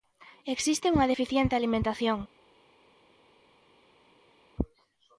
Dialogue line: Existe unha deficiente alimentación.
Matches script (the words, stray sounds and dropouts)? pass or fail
pass